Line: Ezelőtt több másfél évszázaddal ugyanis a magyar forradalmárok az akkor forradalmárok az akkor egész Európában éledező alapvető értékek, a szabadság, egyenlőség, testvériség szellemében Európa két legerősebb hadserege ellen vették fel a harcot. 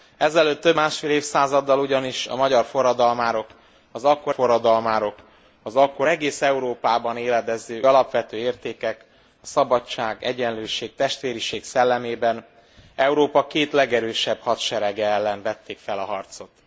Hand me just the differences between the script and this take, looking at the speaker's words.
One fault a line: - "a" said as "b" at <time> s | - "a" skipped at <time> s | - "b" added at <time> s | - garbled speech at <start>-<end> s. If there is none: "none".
none